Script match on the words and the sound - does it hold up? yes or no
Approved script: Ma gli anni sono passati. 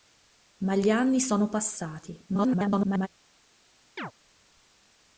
no